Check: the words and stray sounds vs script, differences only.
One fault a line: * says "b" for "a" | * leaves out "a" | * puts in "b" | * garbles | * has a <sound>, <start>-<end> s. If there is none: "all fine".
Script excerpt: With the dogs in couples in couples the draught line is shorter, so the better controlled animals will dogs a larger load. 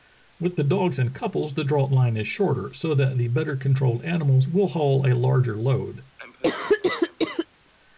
* leaves out "in couples"
* puts in "that"
* says "haul" for "dogs"
* has a cough, 6.2-7.5 s